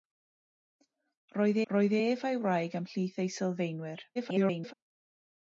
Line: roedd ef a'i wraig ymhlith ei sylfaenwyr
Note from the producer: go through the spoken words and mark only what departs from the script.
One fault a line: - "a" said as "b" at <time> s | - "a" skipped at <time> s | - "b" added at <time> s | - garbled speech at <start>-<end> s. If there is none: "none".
- "roedd" added at 1.7 s
- garbled speech at 4.2-4.7 s